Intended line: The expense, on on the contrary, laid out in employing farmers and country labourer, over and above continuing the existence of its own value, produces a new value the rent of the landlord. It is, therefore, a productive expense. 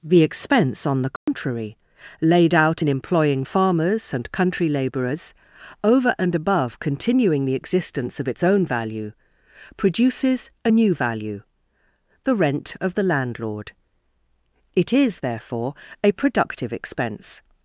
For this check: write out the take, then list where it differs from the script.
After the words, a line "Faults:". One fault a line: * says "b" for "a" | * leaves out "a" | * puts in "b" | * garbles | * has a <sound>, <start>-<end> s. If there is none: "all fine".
The expense, on the contrary, laid out in employing farmers and country labourers, over and above continuing the existence of its own value, produces a new value the rent of the landlord. It is, therefore, a productive expense.
Faults:
* leaves out "on"
* has a dropout, 1.2-1.3 s
* says "labourers" for "labourer"